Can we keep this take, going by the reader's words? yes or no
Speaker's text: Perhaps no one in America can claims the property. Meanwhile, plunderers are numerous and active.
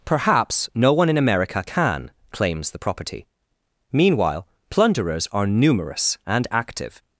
yes